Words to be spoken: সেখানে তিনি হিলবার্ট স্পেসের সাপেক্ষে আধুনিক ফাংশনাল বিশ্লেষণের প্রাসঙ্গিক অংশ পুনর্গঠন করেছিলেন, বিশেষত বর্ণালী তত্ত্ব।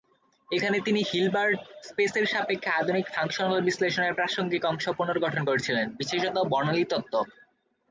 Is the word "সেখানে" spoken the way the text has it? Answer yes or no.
no